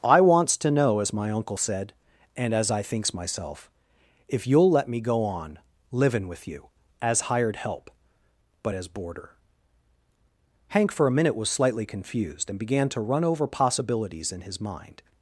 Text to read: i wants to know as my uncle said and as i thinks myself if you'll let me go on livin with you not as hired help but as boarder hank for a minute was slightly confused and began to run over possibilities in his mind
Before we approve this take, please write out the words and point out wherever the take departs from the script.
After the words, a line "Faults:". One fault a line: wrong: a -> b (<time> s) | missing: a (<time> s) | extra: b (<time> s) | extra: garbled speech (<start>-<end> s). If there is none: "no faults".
i wants to know as my uncle said and as i thinks myself if you'll let me go on livin with you as hired help but as boarder hank for a minute was slightly confused and began to run over possibilities in his mind
Faults:
missing: not (6.7 s)